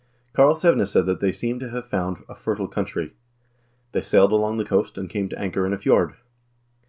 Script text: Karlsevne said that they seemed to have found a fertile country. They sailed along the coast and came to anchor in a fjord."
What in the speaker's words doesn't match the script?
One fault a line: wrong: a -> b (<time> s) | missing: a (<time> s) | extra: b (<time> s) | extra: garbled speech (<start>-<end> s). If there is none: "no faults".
no faults